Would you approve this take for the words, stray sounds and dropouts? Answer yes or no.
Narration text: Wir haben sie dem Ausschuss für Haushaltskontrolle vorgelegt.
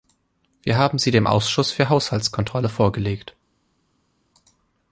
yes